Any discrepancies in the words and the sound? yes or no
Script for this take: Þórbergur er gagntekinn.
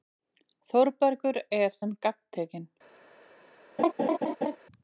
yes